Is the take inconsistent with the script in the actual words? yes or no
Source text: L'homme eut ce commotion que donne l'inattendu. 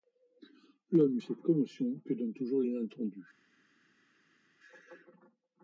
yes